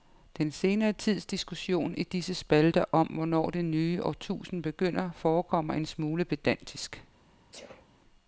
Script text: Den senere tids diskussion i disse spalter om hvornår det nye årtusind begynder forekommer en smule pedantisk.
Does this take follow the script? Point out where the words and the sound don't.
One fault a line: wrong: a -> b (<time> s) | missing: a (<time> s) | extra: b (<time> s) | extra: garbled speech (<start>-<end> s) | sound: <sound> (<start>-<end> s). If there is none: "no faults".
sound: sneeze (7.5-7.9 s)